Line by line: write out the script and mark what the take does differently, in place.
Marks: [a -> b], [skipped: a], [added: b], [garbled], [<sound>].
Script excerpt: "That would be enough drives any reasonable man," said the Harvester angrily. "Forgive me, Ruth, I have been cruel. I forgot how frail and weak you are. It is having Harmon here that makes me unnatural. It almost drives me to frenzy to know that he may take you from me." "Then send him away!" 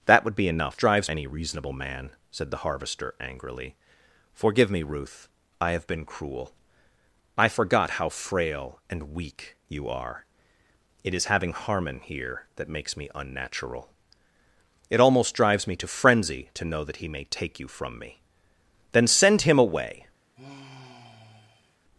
"That would be enough drives any reasonable man," said the Harvester angrily. "Forgive me, Ruth, I have been cruel. I forgot how frail and weak you are. It is having Harmon here that makes me unnatural. It almost drives me to frenzy to know that he may take you from me." "Then send him away!" [sigh]